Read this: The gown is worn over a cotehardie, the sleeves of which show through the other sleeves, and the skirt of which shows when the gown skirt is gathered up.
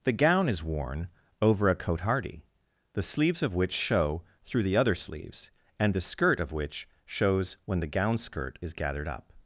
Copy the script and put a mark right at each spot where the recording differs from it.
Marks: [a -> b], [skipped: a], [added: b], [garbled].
The gown is worn over a cotehardie, the sleeves of which show through the other sleeves, and the skirt of which shows when the gown skirt is gathered up.